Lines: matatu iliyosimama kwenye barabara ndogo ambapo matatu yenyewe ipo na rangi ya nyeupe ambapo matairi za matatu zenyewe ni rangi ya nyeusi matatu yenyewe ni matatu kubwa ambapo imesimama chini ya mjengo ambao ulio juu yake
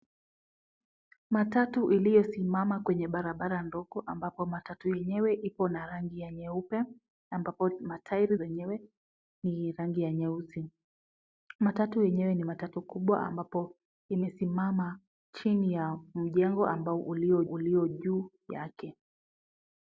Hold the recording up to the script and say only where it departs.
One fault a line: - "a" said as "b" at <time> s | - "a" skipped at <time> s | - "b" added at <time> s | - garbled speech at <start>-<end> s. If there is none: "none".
- "za matatu" skipped at 8.4 s
- "ulio" added at 17.4 s